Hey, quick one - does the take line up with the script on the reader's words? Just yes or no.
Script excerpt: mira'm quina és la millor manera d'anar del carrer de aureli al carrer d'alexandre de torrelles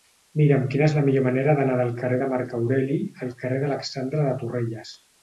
no